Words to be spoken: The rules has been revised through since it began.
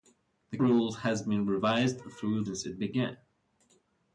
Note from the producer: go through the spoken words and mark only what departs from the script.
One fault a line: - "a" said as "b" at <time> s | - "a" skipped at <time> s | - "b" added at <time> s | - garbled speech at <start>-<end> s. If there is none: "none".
none